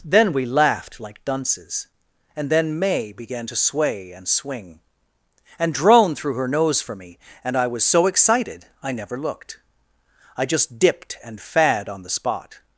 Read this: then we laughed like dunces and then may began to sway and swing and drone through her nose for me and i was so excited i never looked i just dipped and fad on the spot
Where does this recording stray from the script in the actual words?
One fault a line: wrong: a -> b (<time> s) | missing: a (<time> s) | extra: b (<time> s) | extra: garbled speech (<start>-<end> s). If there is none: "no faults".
no faults